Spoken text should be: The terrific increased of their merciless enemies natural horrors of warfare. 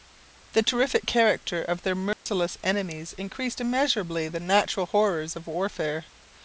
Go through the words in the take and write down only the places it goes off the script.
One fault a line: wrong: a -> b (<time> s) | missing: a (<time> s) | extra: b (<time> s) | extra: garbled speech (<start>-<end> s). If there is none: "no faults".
wrong: increased -> character (1.1 s)
extra: increased immeasurably the (3.2 s)